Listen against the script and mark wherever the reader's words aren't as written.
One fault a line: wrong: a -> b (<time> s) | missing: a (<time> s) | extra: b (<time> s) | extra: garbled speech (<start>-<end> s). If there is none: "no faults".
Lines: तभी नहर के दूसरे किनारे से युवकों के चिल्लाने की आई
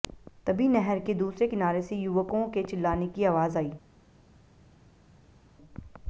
extra: आवाज (3.3 s)